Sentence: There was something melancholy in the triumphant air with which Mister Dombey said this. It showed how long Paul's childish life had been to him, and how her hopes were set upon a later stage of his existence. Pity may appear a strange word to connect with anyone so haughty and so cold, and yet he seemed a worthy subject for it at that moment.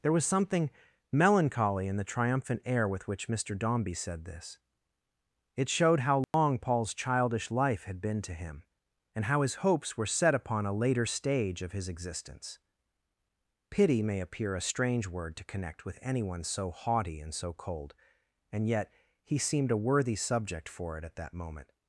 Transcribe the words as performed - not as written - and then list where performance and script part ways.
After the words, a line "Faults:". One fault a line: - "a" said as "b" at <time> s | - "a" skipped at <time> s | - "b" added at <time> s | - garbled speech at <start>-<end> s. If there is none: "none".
There was something melancholy in the triumphant air with which Mister Dombey said this. It showed how long Paul's childish life had been to him, and how his hopes were set upon a later stage of his existence. Pity may appear a strange word to connect with anyone so haughty and so cold, and yet he seemed a worthy subject for it at that moment.
Faults:
- "her" said as "his" at 9.4 s